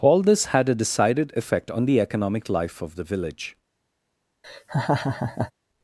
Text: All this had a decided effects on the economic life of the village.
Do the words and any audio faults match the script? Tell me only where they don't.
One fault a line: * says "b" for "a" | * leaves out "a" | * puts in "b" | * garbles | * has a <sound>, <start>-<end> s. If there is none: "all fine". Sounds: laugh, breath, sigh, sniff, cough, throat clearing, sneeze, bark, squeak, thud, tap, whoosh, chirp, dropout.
* says "effect" for "effects"
* has a laugh, 4.4-5.5 s